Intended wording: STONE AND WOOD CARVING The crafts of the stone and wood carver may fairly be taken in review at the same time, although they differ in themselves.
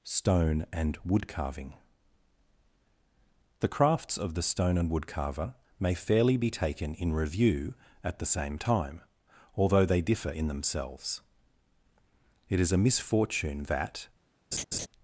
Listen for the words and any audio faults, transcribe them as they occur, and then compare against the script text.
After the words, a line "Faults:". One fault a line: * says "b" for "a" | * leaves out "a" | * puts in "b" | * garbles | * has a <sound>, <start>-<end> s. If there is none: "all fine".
STONE AND WOOD CARVING The crafts of the stone and wood carver may fairly be taken in review at the same time, although they differ in themselves. It is a misfortune that
Faults:
* puts in "It is a misfortune that"
* has a laugh, 14.5-14.9 s